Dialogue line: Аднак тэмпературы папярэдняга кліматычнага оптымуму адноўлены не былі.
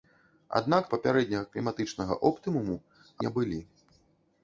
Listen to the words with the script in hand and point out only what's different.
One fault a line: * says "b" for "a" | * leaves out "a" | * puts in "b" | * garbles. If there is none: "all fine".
* leaves out "тэмпературы"
* leaves out "адноўлены"